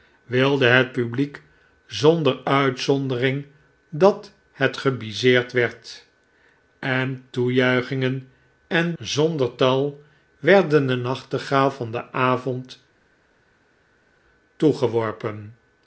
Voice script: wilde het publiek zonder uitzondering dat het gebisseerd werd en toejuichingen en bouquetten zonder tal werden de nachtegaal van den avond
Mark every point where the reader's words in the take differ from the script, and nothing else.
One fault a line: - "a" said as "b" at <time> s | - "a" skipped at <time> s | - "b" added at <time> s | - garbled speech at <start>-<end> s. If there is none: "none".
- "bouquetten" skipped at 8.9 s